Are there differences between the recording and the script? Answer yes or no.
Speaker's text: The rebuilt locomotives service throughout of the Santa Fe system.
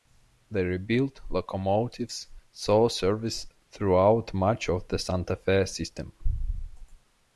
yes